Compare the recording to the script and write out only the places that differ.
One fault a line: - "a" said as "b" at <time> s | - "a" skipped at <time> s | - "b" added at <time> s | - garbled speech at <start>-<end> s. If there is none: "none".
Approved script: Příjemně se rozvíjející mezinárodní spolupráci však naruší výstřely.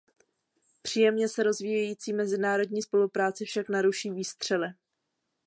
none